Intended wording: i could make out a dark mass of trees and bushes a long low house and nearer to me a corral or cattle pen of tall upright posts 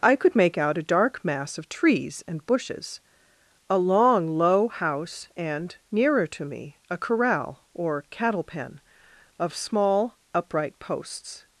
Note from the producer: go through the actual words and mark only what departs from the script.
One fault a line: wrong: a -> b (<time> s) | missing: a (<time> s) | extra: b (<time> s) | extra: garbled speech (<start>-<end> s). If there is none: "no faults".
wrong: tall -> small (9.6 s)